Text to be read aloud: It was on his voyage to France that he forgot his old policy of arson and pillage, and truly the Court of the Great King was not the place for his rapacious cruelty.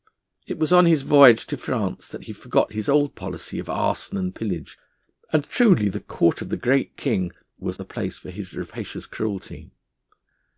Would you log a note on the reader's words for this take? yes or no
yes